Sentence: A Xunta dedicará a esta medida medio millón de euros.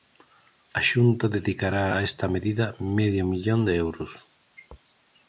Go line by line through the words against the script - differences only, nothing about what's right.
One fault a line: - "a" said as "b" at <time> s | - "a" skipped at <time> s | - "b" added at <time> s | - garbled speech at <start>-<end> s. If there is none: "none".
none